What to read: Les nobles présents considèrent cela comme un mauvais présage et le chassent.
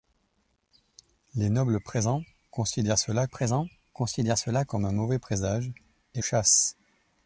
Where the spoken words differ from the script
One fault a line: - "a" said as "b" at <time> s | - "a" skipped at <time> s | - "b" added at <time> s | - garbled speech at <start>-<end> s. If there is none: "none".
- "présents considèrent cela" added at 3.3 s
- "le" skipped at 6.2 s